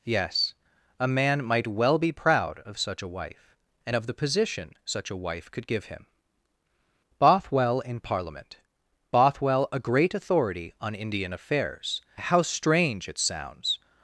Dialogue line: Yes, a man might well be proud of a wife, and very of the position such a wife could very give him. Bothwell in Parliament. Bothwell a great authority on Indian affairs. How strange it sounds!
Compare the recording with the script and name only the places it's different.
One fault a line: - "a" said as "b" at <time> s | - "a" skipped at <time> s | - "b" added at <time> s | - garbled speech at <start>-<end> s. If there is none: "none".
- "such" added at 2.8 s
- "very" skipped at 4.0 s
- "very" skipped at 5.7 s